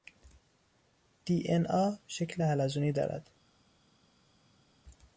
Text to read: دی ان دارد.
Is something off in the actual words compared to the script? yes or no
yes